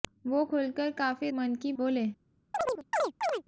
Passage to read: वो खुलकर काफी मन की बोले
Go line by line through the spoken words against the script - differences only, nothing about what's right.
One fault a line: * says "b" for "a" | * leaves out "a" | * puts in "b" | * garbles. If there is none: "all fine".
all fine